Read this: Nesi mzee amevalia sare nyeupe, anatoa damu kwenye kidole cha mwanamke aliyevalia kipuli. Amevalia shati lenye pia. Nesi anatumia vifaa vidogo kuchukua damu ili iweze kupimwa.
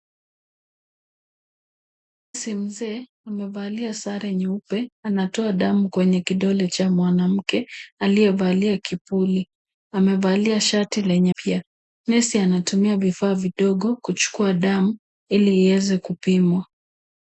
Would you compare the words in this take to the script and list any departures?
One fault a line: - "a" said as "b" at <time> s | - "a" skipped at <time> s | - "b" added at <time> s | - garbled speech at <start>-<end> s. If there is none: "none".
none